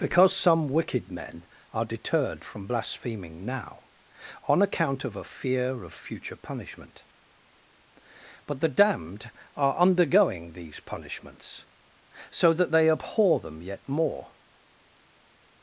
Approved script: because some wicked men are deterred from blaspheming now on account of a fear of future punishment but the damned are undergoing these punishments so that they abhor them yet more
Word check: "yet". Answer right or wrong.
right